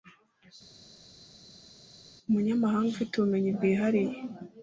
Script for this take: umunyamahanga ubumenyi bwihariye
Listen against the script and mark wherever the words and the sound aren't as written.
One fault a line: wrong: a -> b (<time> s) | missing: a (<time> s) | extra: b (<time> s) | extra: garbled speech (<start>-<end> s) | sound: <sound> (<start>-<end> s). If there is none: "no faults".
extra: ufite (2.9 s)